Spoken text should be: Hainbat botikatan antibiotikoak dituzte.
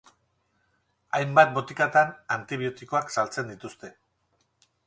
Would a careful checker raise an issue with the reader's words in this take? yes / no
yes